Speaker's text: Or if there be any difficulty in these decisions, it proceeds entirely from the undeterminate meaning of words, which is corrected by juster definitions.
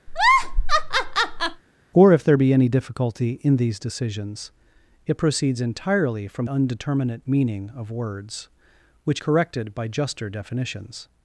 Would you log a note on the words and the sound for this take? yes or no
yes